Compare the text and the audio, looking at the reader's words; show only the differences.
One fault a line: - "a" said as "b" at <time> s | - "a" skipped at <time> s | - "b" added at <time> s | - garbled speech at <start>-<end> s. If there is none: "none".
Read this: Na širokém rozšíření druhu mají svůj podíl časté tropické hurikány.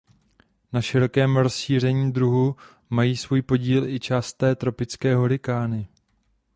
- "i" added at 3.9 s